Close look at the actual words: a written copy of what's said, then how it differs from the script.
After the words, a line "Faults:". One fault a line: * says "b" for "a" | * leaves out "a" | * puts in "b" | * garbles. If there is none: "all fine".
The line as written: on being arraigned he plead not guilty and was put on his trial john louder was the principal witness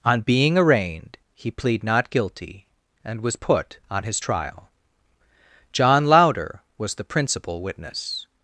on being arraigned he plead not guilty and was put on his trial john louder was the principal witness
Faults:
all fine